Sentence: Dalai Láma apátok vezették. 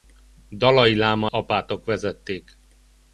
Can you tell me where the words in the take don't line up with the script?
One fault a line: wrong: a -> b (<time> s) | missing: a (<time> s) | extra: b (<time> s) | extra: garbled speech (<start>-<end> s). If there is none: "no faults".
no faults